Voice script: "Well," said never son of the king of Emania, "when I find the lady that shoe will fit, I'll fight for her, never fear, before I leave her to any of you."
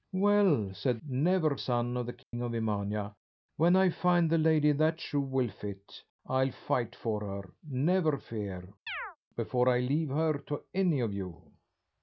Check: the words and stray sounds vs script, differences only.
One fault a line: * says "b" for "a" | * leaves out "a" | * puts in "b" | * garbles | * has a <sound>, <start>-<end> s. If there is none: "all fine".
* has a dropout, 2.2-2.3 s
* has a chirp, 8.9-9.2 s